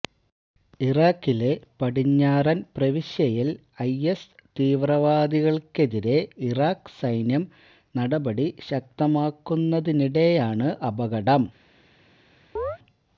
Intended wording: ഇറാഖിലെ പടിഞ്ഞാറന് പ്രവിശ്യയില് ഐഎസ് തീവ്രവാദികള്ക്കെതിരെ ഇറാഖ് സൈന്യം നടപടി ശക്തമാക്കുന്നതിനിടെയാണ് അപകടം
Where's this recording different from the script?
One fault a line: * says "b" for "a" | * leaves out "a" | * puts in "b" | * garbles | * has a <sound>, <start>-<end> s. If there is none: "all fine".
* has a chirp, 12.6-12.8 s